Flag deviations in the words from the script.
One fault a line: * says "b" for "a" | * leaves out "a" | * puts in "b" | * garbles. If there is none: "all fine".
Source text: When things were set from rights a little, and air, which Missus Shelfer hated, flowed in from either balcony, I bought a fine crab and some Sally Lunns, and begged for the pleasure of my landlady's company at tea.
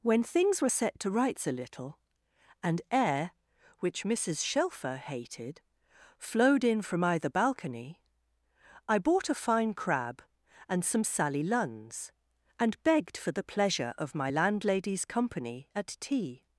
* says "to" for "from"